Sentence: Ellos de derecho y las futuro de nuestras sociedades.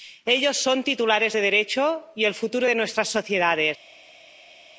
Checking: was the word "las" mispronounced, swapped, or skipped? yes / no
yes